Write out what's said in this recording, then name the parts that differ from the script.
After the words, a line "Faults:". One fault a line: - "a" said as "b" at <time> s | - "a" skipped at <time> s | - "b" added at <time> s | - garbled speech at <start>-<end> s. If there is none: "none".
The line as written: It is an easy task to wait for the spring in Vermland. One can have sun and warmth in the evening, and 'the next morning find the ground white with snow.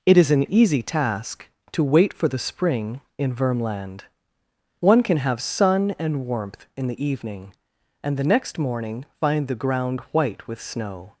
It is an easy task to wait for the spring in Vermland. One can have sun and warmth in the evening, and 'the next morning find the ground white with snow.
Faults:
none